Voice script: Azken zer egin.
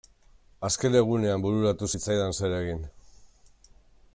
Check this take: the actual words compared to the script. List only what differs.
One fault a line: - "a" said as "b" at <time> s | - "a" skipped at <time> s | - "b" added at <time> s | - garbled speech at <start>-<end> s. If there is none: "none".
- "egunean bururatu zitzaidan" added at 1.0 s